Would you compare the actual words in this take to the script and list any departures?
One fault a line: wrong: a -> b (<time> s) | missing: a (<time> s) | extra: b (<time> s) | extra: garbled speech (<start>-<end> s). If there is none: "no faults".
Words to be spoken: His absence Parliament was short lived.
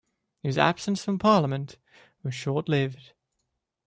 extra: from (1.1 s)